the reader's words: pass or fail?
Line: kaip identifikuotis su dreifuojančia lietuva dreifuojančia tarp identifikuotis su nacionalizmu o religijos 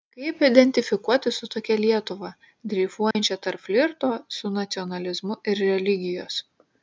fail